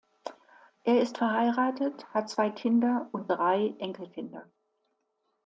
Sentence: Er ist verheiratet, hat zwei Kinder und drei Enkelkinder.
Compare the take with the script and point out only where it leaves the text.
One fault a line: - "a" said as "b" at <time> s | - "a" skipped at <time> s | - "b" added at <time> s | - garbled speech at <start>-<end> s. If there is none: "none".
none